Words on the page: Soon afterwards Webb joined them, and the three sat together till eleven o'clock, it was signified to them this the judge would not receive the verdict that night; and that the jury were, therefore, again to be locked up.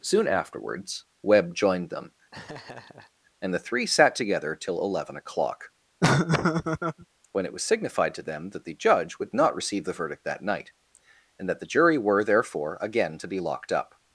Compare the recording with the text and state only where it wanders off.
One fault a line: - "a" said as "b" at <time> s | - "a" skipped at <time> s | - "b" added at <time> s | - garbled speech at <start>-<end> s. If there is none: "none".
- "when" added at 7.3 s
- "this" said as "that" at 8.5 s